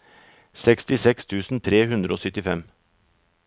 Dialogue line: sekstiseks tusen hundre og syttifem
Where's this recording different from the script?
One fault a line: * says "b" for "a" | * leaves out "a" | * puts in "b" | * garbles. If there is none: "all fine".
* puts in "tre"